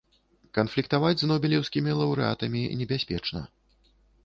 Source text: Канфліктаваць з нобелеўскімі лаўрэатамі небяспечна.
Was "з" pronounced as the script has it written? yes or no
yes